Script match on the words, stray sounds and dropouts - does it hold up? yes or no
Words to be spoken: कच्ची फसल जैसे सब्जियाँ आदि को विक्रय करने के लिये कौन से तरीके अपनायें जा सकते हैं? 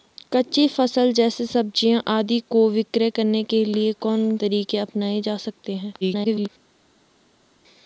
no